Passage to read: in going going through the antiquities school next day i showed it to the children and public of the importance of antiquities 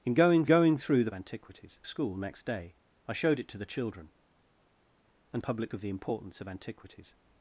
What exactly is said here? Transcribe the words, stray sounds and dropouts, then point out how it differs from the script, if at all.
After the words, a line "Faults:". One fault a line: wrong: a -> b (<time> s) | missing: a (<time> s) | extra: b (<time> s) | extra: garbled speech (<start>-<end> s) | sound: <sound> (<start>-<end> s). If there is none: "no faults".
in going going through the antiquities school next day i showed it to the children and public of the importance of antiquities
Faults:
no faults